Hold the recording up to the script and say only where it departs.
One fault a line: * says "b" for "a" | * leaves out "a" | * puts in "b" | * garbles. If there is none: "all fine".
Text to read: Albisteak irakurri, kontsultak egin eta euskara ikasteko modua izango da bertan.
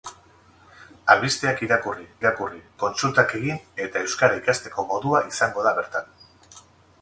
* puts in "irakurri"